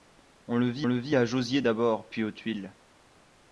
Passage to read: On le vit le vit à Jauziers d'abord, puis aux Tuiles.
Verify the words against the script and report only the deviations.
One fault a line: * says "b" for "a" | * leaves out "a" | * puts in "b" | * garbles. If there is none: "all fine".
all fine